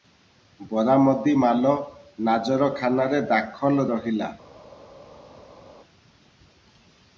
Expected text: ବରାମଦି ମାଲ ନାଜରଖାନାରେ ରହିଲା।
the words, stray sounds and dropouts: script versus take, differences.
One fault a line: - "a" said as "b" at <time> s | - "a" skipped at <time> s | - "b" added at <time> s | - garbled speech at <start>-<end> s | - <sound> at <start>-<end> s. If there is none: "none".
- "ଦାଖଲ" added at 3.3 s